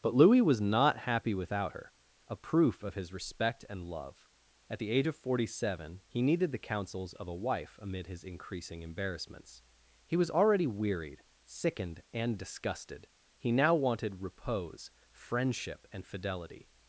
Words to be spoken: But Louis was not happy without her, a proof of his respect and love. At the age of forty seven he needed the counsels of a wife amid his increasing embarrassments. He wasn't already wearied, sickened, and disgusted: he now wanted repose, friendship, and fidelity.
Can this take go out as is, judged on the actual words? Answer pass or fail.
fail